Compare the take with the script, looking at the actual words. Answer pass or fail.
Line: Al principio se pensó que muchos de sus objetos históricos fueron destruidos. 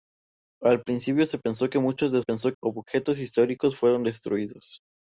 fail